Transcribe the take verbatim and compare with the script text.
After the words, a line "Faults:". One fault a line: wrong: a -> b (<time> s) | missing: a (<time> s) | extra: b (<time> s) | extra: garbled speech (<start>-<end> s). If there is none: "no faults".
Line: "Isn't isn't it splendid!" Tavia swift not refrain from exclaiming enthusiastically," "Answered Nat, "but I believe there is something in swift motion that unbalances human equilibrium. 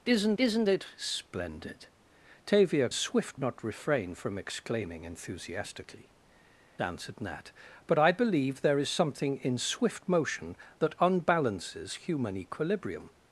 "Isn't isn't it splendid!" Tavia swift not refrain from exclaiming enthusiastically," "Answered Nat, "but I believe there is something in swift motion that unbalances human equilibrium.
Faults:
no faults